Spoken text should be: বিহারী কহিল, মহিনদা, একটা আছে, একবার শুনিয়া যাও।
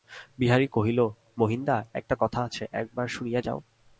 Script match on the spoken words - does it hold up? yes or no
no